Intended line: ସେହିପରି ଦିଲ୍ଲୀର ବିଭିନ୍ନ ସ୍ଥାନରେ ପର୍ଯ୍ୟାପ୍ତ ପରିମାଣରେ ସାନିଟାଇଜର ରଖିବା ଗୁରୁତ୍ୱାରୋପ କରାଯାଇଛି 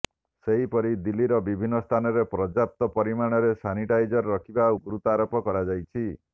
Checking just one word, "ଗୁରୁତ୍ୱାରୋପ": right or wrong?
right